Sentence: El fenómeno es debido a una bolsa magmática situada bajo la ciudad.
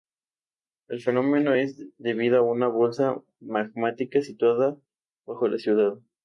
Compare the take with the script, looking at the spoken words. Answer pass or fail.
pass